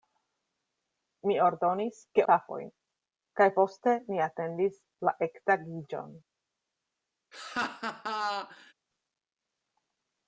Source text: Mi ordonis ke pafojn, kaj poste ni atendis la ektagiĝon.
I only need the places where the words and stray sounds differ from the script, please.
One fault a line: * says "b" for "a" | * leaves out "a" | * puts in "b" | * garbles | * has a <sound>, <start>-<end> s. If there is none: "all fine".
* has a laugh, 7.3-8.7 s